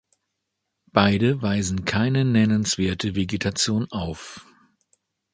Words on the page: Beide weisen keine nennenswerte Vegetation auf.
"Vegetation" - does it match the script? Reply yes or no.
yes